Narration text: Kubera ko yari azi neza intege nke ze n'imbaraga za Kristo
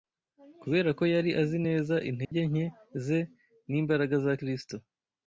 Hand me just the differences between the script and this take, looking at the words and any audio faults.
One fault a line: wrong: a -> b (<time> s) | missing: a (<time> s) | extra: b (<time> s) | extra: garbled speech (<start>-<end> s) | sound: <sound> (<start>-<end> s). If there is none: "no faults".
sound: dropout (2.2-2.3 s)